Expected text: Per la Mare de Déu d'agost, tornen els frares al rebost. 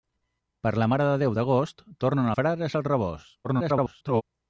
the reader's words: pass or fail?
fail